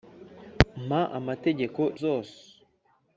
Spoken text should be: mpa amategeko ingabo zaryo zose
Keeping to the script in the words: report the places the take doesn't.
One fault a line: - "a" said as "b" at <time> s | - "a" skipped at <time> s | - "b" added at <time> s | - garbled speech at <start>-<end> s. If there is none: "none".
- "ingabo zaryo" skipped at 1.8 s